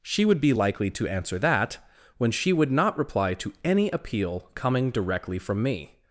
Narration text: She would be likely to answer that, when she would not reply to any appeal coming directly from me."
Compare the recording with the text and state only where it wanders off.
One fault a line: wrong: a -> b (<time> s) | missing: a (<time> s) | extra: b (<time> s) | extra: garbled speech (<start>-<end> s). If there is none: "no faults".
no faults